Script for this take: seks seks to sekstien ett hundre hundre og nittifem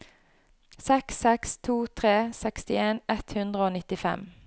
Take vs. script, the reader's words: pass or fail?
fail